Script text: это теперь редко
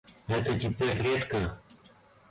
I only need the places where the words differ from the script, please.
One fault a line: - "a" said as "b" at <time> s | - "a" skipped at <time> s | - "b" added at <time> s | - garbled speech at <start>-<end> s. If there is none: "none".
none